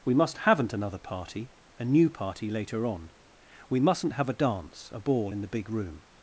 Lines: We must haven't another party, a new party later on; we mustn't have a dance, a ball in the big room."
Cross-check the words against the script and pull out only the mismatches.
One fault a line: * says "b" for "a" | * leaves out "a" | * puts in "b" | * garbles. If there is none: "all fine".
all fine